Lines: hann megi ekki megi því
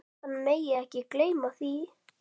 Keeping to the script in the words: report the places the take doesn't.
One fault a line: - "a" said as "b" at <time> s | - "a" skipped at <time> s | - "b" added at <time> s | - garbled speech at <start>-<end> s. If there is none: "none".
- "megi" said as "gleyma" at 1.2 s